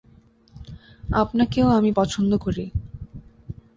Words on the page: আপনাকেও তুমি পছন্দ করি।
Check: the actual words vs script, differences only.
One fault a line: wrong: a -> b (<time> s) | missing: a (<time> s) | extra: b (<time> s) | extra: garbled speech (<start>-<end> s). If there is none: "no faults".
wrong: তুমি -> আমি (1.7 s)